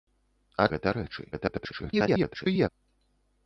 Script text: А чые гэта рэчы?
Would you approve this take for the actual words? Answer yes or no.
no